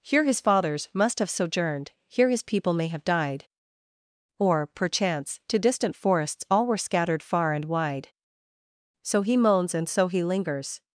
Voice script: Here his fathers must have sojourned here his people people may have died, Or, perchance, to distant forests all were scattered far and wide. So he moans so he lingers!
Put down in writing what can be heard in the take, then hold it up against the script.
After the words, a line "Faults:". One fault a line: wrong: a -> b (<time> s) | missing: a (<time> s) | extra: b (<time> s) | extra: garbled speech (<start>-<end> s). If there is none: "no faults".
Here his fathers must have sojourned here his people may have died, Or, perchance, to distant forests all were scattered far and wide. So he moans and so he lingers!
Faults:
missing: people (2.7 s)
extra: and (9.8 s)